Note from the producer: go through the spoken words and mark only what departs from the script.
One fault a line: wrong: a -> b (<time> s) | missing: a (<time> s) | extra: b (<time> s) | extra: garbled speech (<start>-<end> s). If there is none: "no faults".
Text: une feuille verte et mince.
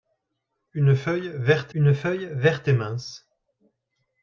extra: une feuille verte (1.7 s)